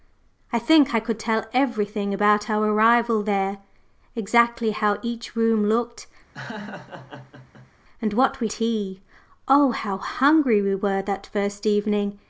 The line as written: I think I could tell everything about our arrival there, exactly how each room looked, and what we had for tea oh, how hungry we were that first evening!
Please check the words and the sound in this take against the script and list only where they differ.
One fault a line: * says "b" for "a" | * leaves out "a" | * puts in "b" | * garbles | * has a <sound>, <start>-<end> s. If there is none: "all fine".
* has a laugh, 6.3-7.7 s
* leaves out "had for"